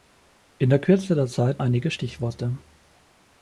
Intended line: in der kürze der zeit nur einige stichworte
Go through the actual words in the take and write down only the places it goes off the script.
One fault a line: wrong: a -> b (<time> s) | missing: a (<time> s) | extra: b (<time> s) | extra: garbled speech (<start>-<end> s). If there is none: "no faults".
missing: nur (1.6 s)